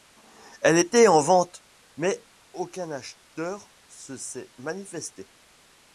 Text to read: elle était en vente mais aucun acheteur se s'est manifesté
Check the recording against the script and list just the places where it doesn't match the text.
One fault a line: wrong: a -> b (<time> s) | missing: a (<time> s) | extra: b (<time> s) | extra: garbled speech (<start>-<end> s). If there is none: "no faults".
no faults